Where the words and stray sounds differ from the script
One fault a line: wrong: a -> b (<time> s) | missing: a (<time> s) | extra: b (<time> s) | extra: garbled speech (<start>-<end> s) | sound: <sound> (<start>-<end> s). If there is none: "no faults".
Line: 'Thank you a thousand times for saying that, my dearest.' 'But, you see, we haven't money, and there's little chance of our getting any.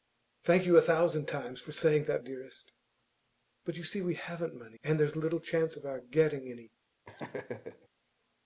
missing: my (2.2 s)
sound: laugh (7.0-7.9 s)